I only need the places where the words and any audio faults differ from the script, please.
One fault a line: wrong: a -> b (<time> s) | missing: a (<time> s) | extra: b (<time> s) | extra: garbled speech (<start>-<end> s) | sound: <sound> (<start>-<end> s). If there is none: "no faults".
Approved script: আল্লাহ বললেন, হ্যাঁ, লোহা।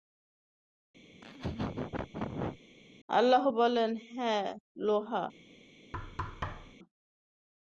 sound: laugh (1.1-2.6 s)
sound: thud (5.9-6.8 s)